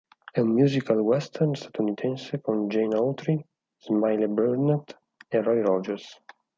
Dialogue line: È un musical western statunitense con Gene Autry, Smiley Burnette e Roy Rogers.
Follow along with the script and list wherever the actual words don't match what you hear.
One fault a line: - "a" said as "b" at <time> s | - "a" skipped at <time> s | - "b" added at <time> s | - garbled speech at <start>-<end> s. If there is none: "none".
none